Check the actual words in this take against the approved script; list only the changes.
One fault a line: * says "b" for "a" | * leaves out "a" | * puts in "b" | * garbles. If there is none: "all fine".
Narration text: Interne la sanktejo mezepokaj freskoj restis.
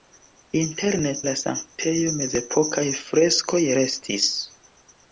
all fine